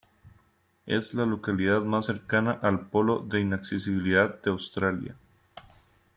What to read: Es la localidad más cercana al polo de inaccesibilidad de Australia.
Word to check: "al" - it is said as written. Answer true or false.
true